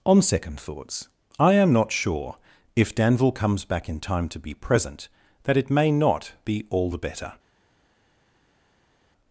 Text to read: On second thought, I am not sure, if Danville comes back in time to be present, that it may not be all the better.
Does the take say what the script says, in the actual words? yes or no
no